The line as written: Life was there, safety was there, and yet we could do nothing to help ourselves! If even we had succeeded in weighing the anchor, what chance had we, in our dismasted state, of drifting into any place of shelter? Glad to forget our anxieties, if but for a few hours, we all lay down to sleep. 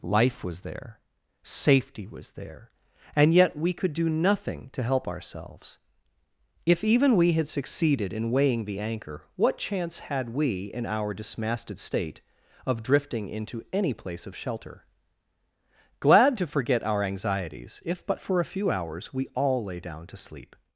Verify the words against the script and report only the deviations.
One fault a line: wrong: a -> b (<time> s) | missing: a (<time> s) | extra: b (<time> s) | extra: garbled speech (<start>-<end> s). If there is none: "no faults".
no faults